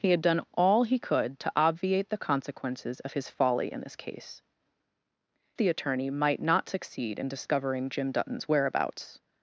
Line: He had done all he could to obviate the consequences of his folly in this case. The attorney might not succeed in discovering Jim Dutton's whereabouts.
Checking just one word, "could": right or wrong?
right